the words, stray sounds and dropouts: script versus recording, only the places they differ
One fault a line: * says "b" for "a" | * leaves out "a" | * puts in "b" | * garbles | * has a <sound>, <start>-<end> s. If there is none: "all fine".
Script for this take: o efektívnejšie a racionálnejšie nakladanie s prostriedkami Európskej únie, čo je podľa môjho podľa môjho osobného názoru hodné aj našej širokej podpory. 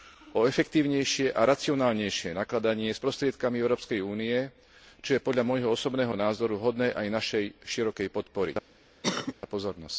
* leaves out "podľa môjho"
* has a cough, 9.0-9.3 s